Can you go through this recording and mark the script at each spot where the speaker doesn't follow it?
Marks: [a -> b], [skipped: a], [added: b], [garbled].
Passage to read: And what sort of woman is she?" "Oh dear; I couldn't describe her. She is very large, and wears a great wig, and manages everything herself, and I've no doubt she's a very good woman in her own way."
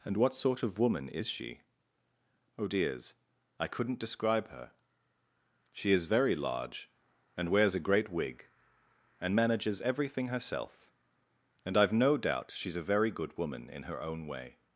And what sort of woman is she?" "Oh [dear; -> dears] I couldn't describe her. She is very large, and wears a great wig, and manages everything herself, and I've no doubt she's a very good woman in her own way."